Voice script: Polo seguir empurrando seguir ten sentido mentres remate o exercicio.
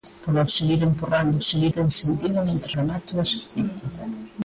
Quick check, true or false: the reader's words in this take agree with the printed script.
true